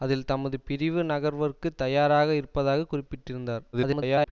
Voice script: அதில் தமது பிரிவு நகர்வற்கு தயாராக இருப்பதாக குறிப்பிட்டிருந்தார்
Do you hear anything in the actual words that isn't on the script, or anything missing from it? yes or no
yes